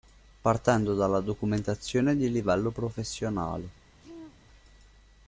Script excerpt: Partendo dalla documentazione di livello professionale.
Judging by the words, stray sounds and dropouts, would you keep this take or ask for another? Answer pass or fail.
fail